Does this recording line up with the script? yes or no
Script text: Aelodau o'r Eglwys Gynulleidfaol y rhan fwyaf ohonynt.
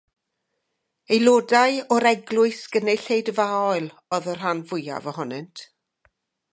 no